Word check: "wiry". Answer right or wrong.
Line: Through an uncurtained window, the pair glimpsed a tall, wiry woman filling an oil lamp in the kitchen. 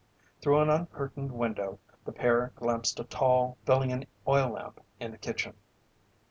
wrong